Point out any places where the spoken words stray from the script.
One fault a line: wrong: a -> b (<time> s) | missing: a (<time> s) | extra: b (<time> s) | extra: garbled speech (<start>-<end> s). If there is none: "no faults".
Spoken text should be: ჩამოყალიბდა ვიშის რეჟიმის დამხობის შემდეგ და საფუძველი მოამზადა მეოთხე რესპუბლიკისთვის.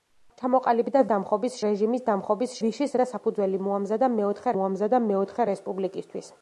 wrong: ვიშის -> დამხობის (1.1 s)
wrong: შემდეგ -> ვიშის (2.6 s)
extra: მოამზადა მეოთხე (4.6 s)